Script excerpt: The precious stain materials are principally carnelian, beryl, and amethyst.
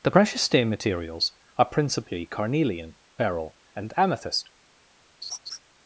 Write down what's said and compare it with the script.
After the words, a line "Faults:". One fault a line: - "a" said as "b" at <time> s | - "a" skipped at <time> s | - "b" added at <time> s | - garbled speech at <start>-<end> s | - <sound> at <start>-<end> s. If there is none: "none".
The precious stain materials are principally carnelian, beryl, and amethyst.
Faults:
- laugh at 5.2-5.6 s